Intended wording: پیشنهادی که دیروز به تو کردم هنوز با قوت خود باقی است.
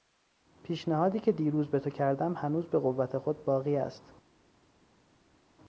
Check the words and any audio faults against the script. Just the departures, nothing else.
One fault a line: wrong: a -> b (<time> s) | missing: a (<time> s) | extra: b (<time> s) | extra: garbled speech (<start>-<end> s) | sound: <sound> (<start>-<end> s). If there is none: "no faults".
wrong: با -> به (2.7 s)